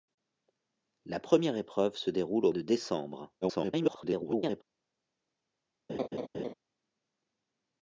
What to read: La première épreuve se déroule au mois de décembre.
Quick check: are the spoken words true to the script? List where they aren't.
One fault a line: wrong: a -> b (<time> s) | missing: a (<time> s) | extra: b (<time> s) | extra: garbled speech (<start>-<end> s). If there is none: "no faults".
missing: mois (2.5 s)
extra: garbled speech (3.4-4.6 s)